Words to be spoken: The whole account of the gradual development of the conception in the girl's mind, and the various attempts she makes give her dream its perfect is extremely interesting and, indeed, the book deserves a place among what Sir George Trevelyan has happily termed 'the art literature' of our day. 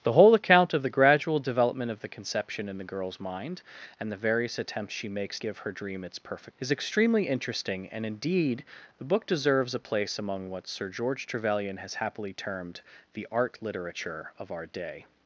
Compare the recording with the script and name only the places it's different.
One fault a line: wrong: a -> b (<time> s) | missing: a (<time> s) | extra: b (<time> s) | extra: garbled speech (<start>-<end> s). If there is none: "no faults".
no faults